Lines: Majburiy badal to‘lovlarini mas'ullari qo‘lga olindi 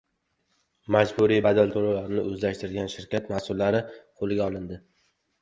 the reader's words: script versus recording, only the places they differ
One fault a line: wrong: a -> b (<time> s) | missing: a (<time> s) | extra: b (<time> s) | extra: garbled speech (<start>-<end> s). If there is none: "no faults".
extra: o‘zlashtirgan shirkat (2.3 s)